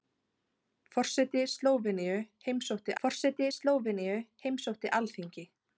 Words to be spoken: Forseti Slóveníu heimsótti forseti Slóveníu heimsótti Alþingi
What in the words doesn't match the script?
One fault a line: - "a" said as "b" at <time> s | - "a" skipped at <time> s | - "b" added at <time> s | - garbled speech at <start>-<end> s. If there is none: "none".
none